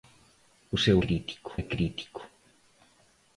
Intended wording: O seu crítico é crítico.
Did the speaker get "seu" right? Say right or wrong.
right